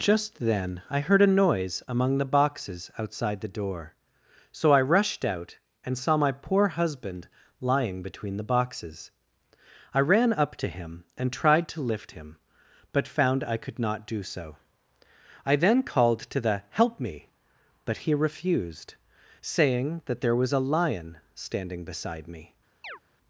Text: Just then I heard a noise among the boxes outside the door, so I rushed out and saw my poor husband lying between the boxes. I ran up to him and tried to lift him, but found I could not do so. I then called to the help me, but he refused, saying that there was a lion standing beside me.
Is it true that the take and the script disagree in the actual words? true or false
false